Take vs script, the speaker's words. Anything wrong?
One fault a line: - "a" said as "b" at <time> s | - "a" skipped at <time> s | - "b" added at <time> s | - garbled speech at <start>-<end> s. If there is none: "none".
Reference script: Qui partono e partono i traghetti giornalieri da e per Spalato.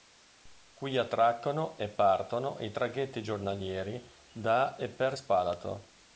- "partono" said as "attraccano" at 1.0 s